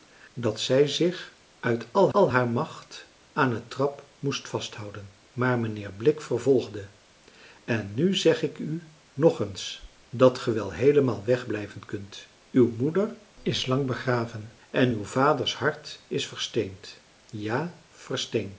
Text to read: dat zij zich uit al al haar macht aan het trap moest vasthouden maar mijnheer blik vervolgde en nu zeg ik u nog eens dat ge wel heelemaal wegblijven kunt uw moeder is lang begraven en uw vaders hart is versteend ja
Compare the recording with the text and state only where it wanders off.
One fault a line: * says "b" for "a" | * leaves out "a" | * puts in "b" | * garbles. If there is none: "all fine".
all fine